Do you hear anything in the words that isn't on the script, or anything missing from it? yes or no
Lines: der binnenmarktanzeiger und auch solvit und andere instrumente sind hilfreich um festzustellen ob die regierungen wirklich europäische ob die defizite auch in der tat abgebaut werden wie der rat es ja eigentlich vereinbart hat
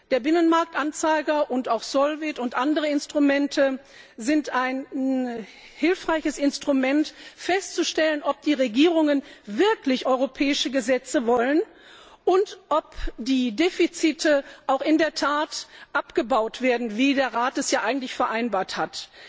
yes